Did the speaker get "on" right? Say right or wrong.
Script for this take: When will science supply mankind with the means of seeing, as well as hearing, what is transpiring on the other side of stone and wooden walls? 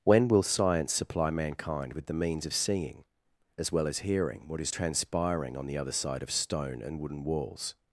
right